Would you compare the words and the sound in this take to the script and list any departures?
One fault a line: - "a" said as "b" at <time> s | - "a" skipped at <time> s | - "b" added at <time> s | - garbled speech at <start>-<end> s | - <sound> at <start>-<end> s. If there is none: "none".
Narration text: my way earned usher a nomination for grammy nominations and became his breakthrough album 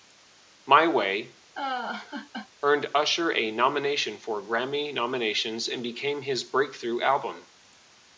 - laugh at 1.6-2.5 s